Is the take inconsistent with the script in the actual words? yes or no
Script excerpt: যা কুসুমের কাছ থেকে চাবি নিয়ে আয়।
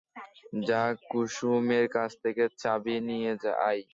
no